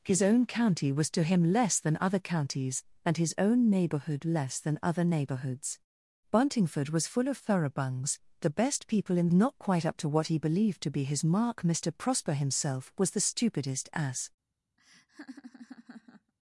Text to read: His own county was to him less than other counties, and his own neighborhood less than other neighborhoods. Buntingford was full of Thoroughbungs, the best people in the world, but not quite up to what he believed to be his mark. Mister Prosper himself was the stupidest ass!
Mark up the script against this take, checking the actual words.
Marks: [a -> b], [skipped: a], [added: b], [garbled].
His own county was to him less than other counties, and his own neighborhood less than other neighborhoods. Buntingford was full of Thoroughbungs, the best people in [skipped: the world, but] not quite up to what he believed to be his mark. Mister Prosper himself was the stupidest ass!